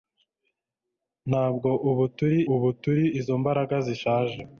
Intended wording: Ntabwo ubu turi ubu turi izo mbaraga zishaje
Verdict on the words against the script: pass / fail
pass